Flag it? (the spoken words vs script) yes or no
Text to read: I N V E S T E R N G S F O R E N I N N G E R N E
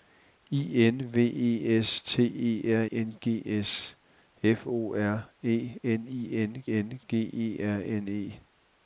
no